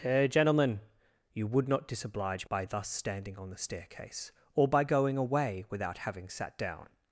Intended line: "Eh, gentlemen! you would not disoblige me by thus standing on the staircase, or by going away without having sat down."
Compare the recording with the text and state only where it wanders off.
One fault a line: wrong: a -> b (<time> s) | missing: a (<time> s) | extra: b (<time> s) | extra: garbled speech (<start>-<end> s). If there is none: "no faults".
missing: me (2.5 s)